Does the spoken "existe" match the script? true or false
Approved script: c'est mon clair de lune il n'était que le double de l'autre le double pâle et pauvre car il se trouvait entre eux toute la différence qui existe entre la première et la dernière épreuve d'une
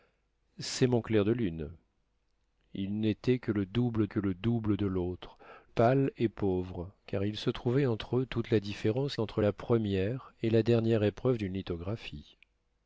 false